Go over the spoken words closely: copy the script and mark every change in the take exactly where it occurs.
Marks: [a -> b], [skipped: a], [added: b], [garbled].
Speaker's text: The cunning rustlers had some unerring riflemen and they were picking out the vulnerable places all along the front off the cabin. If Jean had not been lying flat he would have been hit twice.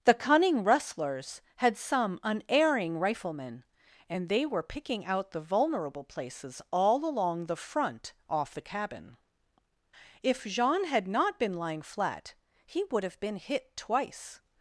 The cunning rustlers had some unerring riflemen and they were picking out the vulnerable places all along the front off the cabin. If Jean had not been lying flat he would have been hit twice.